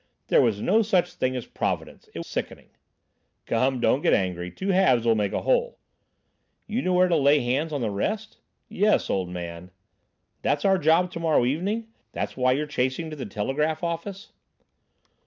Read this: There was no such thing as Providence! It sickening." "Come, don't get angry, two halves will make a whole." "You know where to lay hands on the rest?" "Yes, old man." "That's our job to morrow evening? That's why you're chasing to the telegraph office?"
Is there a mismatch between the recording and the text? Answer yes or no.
no